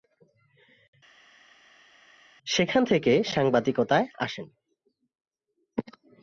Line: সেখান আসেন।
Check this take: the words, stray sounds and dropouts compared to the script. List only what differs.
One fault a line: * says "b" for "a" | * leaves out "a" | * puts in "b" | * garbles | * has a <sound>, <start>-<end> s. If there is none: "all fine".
* puts in "থেকে সাংবাদিকতায়"